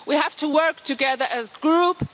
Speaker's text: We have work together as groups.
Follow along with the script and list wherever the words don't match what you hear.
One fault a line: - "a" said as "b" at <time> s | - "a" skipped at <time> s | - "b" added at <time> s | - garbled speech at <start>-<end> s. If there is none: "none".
- "to" added at 0.4 s